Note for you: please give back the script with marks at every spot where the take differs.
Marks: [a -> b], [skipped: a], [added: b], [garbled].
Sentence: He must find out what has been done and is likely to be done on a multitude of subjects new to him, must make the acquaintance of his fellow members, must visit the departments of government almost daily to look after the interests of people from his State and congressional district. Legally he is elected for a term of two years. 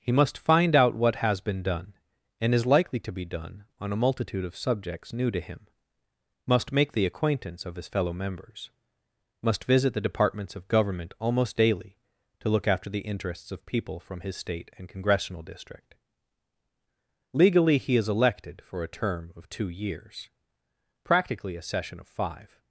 He must find out what has been done and is likely to be done on a multitude of subjects new to him, must make the acquaintance of his fellow members, must visit the departments of government almost daily to look after the interests of people from his State and congressional district. Legally he is elected for a term of two years. [added: Practically a session of five]